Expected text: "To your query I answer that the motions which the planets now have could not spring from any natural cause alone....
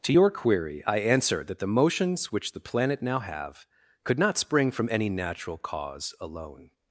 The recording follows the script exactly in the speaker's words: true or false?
false